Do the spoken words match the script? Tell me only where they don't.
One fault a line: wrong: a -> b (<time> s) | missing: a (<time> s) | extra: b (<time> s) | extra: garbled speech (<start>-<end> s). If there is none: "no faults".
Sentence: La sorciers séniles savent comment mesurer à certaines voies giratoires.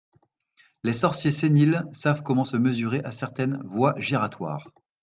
wrong: La -> Les (0.8 s)
extra: se (2.4 s)